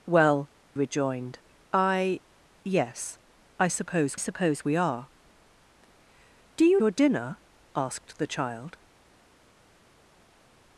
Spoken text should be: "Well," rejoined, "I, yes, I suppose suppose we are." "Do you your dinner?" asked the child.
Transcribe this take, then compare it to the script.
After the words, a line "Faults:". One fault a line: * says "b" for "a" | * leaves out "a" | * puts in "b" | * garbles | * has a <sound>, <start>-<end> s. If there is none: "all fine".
"Well," rejoined, "I, yes, I suppose suppose we are." "Do you your dinner?" asked the child.
Faults:
all fine